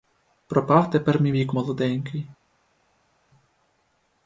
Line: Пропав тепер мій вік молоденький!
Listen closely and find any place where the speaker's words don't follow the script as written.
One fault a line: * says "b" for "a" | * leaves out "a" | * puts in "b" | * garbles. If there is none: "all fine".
all fine